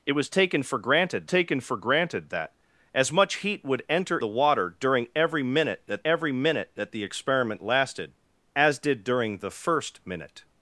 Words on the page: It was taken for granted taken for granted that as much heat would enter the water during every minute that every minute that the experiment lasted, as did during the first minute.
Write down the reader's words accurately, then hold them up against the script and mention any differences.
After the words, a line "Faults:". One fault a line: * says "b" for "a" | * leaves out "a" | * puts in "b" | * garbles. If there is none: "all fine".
It was taken for granted taken for granted that as much heat would enter the water during every minute that every minute that the experiment lasted, as did during the first minute.
Faults:
all fine